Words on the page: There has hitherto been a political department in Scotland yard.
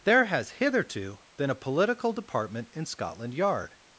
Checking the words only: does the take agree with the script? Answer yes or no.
yes